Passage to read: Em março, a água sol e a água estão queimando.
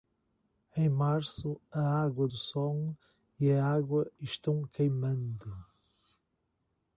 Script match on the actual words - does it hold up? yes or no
yes